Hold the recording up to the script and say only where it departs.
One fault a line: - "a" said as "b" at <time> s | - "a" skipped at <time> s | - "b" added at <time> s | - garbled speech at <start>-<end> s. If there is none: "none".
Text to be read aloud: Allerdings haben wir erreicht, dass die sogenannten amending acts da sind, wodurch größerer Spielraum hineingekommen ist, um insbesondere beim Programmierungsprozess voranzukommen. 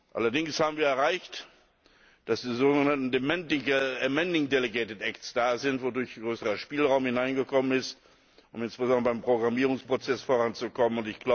- "delegated" added at 4.5 s